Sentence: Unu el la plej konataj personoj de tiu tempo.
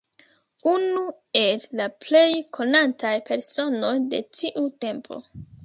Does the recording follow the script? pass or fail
pass